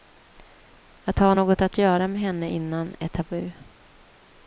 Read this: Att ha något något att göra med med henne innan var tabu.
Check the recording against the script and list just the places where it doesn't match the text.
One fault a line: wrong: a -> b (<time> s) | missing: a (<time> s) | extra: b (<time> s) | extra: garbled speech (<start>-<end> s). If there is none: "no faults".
missing: något (1.6 s)
missing: med (2.2 s)
wrong: var -> är (3.0 s)